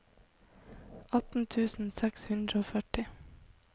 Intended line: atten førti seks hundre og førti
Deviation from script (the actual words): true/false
true